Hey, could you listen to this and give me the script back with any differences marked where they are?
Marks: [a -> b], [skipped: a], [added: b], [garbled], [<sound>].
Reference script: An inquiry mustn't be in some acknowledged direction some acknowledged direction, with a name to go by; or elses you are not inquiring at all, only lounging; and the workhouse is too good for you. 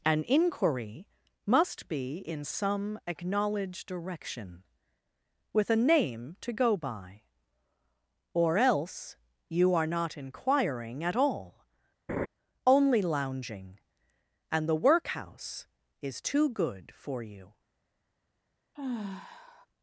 An inquiry [mustn't -> must] be in some acknowledged direction [skipped: some acknowledged direction,] with a name to go by; or [elses -> else] you are not inquiring at all, [laugh] only lounging; and the workhouse is too good for you. [sigh]